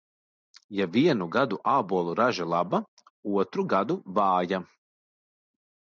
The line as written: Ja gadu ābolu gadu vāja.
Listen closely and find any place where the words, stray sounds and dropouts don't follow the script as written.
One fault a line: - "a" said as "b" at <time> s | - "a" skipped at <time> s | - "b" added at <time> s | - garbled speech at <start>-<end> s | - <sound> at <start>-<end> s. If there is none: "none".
- "vienu" added at 0.9 s
- "raža laba otru" added at 2.2 s